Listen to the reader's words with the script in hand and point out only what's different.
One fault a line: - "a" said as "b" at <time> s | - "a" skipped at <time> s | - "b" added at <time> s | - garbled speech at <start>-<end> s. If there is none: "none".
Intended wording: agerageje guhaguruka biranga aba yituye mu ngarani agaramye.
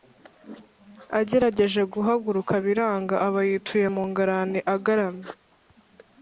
none